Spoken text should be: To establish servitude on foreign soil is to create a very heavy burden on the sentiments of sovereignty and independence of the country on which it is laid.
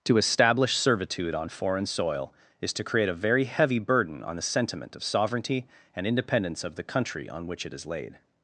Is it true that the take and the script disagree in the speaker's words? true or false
true